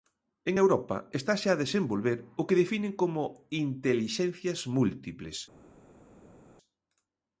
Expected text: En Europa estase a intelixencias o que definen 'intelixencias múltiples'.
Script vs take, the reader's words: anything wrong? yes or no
yes